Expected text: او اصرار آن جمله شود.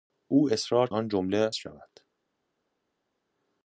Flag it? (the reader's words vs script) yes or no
no